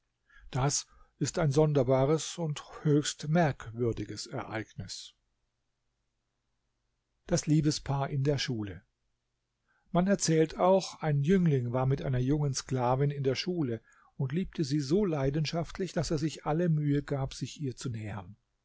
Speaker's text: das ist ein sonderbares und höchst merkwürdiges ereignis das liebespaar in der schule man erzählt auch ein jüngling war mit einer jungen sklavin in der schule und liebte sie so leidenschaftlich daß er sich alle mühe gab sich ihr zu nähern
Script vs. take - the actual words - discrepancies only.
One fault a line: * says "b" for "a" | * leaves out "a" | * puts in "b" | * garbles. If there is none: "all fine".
all fine